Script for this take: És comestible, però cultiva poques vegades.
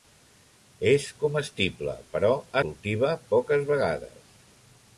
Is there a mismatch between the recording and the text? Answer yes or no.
no